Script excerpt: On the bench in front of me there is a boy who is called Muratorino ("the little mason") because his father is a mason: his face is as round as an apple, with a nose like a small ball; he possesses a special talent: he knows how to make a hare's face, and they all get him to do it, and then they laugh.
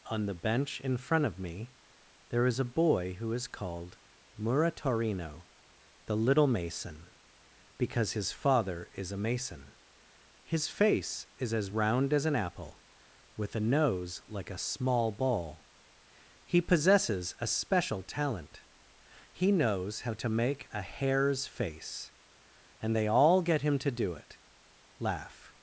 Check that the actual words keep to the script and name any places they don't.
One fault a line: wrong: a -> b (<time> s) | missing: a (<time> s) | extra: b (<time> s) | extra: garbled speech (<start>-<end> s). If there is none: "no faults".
missing: and then they (24.4 s)